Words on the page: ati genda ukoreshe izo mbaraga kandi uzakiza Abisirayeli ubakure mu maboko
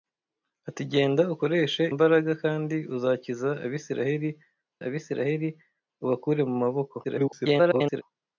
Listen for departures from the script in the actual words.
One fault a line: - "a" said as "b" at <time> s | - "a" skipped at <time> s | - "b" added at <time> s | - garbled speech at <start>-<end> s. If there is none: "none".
- "izo" skipped at 1.8 s
- "Abisirayeli" added at 4.8 s
- garbled speech at 7.0-8.0 s